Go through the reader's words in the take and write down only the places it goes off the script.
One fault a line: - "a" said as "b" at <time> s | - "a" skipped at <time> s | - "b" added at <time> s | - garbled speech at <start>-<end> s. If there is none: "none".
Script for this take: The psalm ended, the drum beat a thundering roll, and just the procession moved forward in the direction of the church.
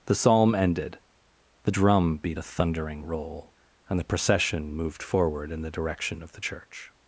- "just" skipped at 4.0 s